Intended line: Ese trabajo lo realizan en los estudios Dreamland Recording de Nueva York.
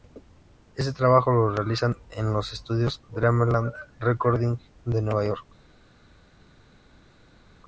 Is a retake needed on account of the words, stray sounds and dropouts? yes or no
yes